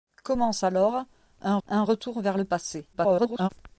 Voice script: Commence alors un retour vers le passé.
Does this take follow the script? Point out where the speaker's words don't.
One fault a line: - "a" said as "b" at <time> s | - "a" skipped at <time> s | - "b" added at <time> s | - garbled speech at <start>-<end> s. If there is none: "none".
- "un" added at 1.7 s
- garbled speech at 2.9-3.5 s